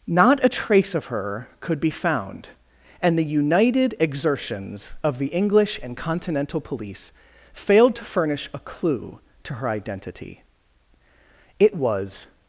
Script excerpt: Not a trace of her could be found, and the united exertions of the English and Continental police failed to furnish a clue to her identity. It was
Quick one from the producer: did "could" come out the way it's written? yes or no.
yes